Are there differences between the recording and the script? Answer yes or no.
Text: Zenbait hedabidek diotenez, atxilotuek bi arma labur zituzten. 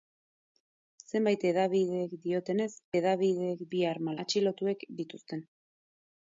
yes